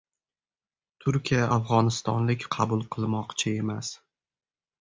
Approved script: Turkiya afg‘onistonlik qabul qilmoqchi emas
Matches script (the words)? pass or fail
pass